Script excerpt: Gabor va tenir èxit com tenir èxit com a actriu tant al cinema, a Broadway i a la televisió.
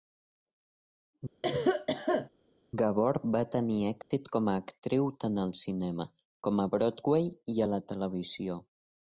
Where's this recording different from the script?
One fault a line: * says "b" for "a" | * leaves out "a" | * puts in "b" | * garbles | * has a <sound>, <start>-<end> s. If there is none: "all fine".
* has a cough, 1.4-2.3 s
* has a dropout, 4.0-4.1 s
* leaves out "tenir èxit com"
* puts in "com"